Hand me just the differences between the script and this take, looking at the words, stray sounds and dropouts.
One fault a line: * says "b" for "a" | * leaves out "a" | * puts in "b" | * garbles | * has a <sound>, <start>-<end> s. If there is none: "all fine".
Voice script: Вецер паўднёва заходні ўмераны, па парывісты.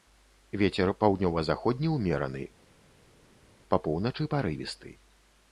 * puts in "поўначы"